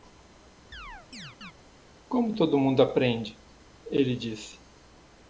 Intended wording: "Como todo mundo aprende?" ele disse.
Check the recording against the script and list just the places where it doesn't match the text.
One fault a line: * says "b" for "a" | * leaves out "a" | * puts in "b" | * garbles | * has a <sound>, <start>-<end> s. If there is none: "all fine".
* has a chirp, 0.7-1.5 s